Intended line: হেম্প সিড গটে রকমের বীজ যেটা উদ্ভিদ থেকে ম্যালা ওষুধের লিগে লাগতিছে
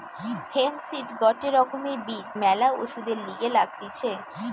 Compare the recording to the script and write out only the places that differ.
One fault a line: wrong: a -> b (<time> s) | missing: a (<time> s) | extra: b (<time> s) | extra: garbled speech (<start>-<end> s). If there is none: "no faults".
missing: যেটা উদ্ভিদ থেকে (2.3 s)